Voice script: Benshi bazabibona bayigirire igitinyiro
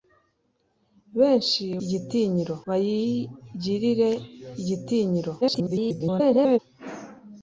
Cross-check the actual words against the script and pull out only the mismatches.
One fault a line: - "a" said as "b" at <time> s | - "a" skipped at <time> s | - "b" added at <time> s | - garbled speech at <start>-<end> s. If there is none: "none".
- "bazabibona" said as "igitinyiro" at 1.8 s
- garbled speech at 5.4-6.6 s